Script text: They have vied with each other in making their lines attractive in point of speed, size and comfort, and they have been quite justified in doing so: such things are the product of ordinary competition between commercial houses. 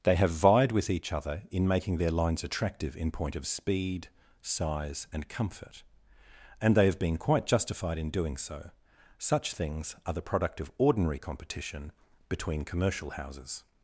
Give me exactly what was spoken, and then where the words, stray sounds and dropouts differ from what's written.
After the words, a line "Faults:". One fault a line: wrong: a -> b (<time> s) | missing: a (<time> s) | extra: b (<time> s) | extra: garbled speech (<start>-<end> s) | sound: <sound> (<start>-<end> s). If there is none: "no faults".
They have vied with each other in making their lines attractive in point of speed, size and comfort, and they have been quite justified in doing so: such things are the product of ordinary competition between commercial houses.
Faults:
no faults